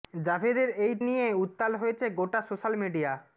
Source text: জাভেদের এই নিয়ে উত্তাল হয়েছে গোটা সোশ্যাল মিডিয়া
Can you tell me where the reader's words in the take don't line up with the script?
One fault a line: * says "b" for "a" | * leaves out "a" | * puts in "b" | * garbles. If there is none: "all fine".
all fine